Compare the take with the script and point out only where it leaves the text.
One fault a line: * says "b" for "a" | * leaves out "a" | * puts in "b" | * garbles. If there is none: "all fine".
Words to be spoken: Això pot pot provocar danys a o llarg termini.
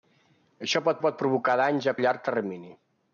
all fine